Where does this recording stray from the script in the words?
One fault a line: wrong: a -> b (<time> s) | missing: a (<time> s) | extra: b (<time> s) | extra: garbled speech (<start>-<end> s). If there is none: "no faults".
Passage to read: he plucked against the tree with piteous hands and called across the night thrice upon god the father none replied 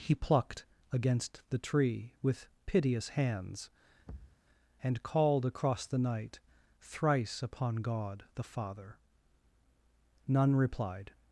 no faults